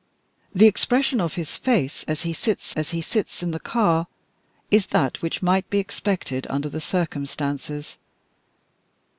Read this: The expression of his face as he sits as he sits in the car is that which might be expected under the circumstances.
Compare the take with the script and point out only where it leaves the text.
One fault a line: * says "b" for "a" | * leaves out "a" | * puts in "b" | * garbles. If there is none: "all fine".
all fine